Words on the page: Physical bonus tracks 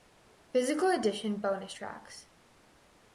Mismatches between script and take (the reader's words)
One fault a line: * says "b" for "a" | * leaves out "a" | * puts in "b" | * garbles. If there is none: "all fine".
* puts in "edition"